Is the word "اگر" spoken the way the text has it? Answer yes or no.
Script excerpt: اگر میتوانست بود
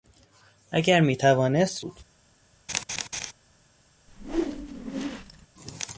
yes